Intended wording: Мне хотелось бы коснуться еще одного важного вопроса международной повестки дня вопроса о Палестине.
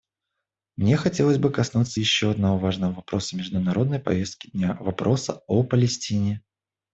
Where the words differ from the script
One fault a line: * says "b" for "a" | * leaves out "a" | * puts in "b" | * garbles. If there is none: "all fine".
all fine